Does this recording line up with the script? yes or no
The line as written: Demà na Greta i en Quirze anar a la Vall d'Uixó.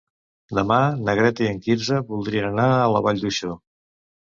no